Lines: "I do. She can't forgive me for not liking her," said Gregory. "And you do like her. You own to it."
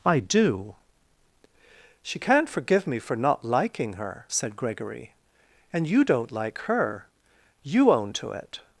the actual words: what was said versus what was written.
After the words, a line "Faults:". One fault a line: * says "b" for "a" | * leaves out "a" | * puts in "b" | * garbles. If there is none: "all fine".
"I do. She can't forgive me for not liking her," said Gregory. "And you don't like her. You own to it."
Faults:
* says "don't" for "do"